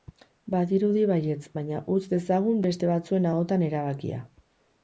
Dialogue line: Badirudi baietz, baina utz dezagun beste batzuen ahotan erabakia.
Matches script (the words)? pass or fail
pass